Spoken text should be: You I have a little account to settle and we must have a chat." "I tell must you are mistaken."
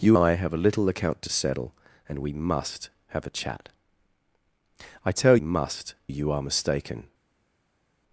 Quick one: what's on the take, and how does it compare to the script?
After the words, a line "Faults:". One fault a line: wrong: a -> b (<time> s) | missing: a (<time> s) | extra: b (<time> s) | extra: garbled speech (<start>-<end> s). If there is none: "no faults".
You I have a little account to settle and we must have a chat." "I tell must you are mistaken."
Faults:
no faults